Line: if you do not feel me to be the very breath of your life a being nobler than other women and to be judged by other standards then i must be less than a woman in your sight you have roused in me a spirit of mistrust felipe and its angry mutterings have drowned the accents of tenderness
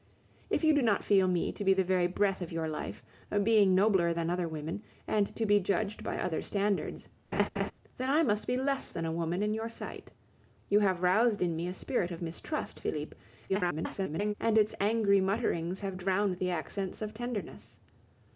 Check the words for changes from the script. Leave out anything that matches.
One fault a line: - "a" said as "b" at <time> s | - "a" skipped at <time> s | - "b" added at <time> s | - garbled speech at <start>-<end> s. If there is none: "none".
- garbled speech at 13.5-14.3 s